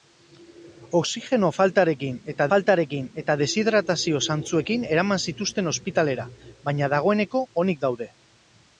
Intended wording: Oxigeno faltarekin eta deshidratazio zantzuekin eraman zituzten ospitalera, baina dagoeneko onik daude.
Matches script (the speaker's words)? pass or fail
fail